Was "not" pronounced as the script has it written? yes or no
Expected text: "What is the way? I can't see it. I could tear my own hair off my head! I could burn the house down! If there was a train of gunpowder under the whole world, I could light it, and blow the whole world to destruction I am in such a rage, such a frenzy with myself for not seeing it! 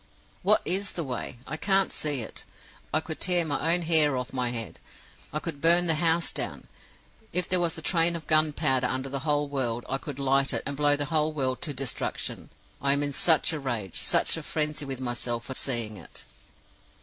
no